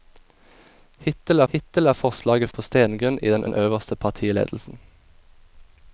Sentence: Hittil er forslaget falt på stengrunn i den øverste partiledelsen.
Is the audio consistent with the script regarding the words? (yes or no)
no